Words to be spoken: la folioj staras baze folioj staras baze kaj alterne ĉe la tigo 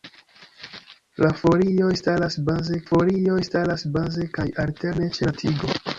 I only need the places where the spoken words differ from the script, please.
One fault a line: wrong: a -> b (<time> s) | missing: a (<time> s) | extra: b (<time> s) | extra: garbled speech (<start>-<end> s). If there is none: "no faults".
no faults